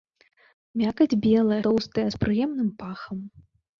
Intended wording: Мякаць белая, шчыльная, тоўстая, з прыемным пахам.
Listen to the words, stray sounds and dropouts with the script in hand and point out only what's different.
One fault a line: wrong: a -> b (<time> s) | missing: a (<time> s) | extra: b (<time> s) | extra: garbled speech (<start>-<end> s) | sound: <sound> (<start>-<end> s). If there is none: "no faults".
missing: шчыльная (1.6 s)